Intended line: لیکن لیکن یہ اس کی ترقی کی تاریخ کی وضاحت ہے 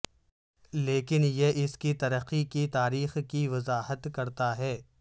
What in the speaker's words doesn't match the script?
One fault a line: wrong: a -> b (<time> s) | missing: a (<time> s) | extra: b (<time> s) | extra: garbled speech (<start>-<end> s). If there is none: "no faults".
missing: لیکن (1.2 s)
extra: کرتا (4.1 s)